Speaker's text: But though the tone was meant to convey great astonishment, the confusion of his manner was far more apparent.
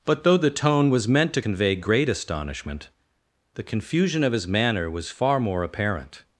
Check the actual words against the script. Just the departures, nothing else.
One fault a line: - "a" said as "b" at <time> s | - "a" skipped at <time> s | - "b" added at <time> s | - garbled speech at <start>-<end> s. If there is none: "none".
none